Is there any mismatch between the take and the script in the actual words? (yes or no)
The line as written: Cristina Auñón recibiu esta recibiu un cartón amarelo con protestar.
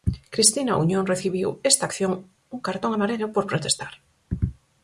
yes